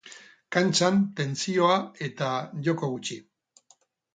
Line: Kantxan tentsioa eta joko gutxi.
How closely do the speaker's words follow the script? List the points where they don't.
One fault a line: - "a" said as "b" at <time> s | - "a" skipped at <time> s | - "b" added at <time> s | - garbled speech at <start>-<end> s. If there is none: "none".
none